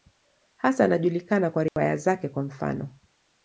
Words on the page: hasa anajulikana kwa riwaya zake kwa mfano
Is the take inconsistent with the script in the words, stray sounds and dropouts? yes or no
yes